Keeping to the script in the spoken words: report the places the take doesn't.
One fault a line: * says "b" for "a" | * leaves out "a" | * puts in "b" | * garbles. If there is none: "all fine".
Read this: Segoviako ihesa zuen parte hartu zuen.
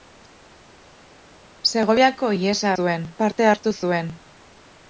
all fine